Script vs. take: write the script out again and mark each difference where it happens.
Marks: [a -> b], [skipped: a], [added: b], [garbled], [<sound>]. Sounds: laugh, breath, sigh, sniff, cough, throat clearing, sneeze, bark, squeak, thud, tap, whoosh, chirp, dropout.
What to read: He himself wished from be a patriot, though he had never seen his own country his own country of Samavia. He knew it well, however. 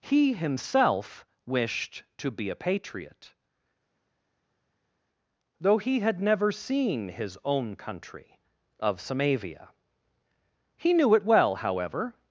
He himself wished [from -> to] be a patriot, though he had never seen his own country [skipped: his own country] of Samavia. He knew it well, however.